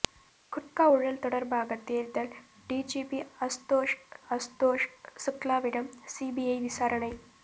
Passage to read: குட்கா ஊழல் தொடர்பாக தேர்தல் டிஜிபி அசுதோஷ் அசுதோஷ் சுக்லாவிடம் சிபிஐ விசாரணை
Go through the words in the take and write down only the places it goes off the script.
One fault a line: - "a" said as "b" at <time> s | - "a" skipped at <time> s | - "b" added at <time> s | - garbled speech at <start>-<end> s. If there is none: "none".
none